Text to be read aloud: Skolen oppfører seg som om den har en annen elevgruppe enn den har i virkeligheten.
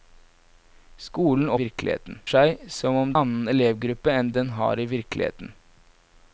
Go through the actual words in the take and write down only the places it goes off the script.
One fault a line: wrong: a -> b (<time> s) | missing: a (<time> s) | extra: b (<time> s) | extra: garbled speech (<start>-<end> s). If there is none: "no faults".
wrong: oppfører -> virkeligheten (1.6 s)
missing: den har en (3.2 s)